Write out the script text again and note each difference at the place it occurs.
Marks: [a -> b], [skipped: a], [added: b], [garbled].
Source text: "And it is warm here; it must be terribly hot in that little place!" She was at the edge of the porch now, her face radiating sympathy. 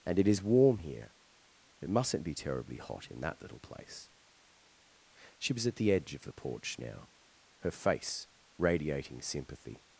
"And it is warm here; it [must -> mustn't] be terribly hot in that little place!" She was at the edge of the porch now, her face radiating sympathy.